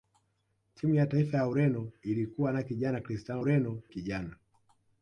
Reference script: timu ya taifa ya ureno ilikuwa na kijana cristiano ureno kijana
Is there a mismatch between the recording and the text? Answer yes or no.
no